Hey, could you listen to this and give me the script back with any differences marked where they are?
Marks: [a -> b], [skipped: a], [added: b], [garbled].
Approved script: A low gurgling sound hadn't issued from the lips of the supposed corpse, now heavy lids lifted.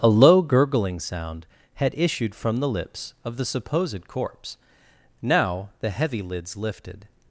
A low gurgling sound [hadn't -> had] issued from the lips of the supposed corpse, now [added: the] heavy lids lifted.